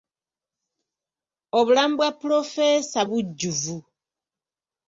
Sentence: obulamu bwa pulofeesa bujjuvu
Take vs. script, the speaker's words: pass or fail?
pass